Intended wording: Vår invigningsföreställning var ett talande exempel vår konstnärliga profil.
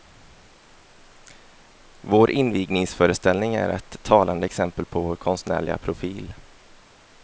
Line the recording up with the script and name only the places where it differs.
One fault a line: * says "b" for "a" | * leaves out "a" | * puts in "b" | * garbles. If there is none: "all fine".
* says "är" for "var"
* puts in "på"